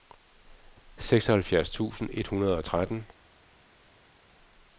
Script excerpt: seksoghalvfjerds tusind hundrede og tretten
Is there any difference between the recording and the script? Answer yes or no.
yes